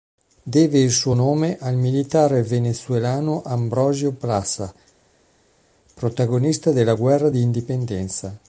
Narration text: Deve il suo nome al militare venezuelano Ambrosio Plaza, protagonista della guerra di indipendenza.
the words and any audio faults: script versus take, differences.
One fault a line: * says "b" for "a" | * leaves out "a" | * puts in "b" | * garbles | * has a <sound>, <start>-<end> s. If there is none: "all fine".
all fine